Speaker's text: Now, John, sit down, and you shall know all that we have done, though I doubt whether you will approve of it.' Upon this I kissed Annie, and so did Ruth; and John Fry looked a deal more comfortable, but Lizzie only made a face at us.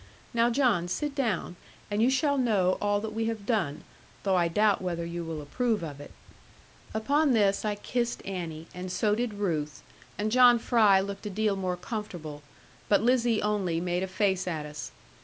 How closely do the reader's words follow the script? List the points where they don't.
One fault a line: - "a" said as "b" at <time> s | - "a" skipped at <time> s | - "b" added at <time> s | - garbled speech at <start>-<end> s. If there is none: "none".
none